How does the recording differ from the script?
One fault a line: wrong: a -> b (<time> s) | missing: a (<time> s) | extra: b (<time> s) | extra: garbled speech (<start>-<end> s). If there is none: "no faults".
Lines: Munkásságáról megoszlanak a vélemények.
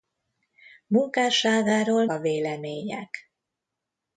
missing: megoszlanak (2.0 s)